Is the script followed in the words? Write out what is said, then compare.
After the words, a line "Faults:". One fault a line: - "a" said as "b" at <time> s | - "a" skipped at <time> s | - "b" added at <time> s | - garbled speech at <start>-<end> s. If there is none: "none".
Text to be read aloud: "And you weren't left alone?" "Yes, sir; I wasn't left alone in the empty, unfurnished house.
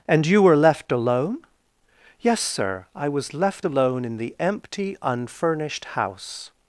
"And you were left alone?" "Yes, sir; I was left alone in the empty, unfurnished house.
Faults:
- "weren't" said as "were" at 0.4 s
- "wasn't" said as "was" at 3.1 s